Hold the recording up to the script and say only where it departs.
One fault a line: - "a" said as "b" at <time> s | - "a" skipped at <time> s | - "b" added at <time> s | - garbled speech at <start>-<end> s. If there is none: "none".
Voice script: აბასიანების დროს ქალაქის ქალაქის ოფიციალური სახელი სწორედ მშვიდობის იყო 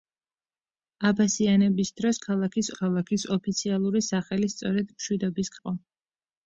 none